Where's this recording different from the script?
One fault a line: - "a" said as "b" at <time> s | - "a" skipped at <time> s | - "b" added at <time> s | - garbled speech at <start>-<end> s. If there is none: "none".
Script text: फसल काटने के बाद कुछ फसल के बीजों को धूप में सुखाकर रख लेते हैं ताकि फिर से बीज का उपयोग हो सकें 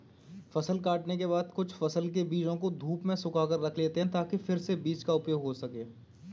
none